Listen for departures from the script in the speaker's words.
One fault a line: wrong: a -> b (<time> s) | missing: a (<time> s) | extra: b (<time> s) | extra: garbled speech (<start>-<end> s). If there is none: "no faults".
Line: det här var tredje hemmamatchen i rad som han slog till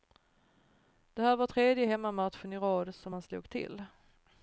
no faults